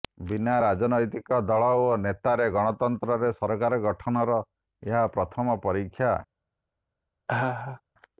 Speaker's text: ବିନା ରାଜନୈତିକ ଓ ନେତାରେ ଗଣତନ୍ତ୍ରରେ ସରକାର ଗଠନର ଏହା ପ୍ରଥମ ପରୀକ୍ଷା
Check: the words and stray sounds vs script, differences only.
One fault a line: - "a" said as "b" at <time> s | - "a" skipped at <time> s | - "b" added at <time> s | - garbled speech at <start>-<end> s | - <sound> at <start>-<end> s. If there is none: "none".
- "ଦଳ" added at 1.5 s
- laugh at 7.3-7.8 s